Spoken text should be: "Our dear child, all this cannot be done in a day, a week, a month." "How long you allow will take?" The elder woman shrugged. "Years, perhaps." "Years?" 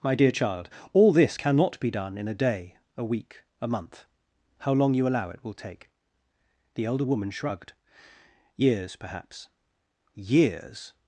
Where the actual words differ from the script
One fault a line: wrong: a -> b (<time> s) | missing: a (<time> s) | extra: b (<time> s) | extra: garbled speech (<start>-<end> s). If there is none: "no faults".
wrong: Our -> My (0.0 s)
extra: it (5.3 s)